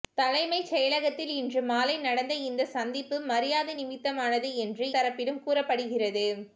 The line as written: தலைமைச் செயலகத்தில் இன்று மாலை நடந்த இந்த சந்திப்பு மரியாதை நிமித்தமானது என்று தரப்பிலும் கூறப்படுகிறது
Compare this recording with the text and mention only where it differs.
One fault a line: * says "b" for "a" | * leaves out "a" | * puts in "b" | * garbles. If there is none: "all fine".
all fine